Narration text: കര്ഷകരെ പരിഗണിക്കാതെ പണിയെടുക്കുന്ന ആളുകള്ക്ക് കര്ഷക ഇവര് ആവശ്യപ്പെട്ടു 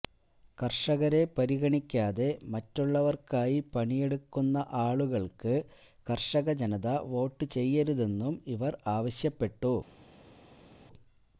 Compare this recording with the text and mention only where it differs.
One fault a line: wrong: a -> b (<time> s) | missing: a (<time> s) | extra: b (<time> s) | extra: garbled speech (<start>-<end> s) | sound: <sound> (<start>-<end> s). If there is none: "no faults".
extra: മറ്റുള്ളവര്ക്കായി (2.5 s)
extra: ജനത വോട്ട് ചെയ്യരുതെന്നും (6.6 s)